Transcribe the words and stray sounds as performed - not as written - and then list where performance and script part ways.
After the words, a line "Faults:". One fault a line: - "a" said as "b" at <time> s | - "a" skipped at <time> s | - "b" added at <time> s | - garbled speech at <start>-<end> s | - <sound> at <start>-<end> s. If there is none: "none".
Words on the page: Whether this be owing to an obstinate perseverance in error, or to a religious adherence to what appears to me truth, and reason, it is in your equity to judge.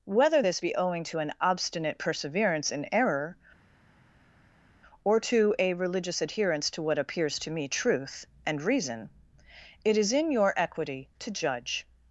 Whether this be owing to an obstinate perseverance in error, or to a religious adherence to what appears to me truth, and reason, it is in your equity to judge.
Faults:
none